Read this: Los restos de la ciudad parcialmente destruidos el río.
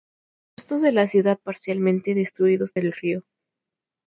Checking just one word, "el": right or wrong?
right